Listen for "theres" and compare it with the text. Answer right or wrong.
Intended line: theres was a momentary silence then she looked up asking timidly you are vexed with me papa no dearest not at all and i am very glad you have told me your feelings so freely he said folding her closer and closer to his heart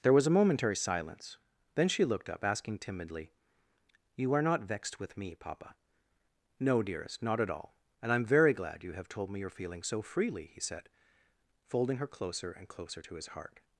wrong